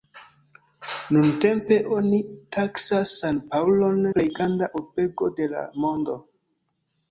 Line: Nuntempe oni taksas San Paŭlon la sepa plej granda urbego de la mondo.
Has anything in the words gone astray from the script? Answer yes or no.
yes